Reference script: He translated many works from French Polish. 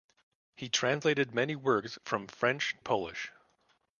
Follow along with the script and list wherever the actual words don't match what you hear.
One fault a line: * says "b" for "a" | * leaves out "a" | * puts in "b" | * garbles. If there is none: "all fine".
all fine